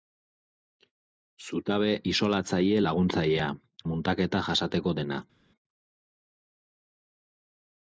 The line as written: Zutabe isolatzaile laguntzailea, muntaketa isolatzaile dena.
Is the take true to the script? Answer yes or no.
no